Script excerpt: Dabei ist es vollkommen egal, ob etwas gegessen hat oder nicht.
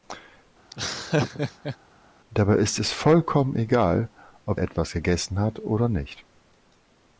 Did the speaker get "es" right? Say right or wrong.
right